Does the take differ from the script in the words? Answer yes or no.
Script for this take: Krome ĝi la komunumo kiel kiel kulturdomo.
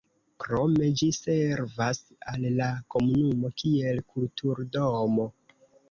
yes